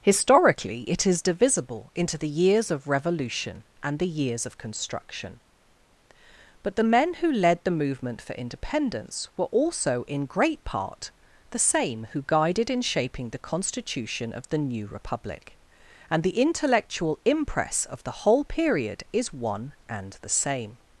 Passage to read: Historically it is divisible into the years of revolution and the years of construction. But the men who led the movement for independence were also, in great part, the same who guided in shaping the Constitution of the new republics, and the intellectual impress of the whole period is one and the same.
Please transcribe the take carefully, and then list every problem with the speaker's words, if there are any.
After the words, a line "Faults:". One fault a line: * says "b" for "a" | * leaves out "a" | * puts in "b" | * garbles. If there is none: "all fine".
Historically it is divisible into the years of revolution and the years of construction. But the men who led the movement for independence were also, in great part, the same who guided in shaping the Constitution of the new republic, and the intellectual impress of the whole period is one and the same.
Faults:
* says "republic" for "republics"